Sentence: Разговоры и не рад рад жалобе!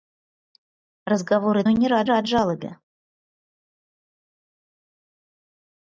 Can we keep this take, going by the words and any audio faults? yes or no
yes